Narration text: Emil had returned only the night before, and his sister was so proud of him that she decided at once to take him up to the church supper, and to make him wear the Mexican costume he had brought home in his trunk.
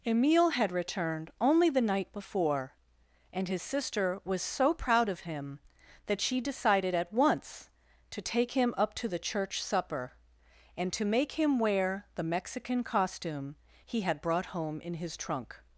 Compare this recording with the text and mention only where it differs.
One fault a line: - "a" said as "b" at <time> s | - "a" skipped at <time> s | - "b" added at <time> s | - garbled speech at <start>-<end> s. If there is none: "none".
none